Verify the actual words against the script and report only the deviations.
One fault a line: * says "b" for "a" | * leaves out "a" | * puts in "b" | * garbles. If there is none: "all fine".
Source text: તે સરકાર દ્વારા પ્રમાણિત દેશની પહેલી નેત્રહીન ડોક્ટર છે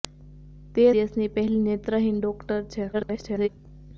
* leaves out "સરકાર દ્વારા પ્રમાણિત"
* garbles